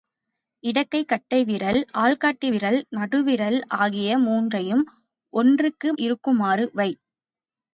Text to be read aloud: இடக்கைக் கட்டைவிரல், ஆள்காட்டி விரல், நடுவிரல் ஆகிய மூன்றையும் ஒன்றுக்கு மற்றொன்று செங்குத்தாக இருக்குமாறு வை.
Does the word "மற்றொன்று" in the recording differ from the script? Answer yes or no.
yes